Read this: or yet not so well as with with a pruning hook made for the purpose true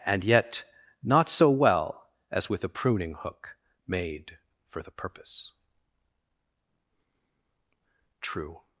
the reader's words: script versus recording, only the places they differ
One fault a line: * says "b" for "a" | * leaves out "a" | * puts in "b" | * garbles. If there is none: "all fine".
* says "and" for "or"
* leaves out "with"